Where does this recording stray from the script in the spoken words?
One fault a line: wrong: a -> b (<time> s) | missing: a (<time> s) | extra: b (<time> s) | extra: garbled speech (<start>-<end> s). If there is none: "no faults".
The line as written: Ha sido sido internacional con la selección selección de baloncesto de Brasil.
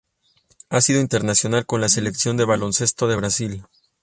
missing: sido (1.0 s)
missing: selección (2.4 s)